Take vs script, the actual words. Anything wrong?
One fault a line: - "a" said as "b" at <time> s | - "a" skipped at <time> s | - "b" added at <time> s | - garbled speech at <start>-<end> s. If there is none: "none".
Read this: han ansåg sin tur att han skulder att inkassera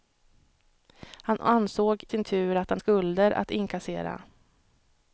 none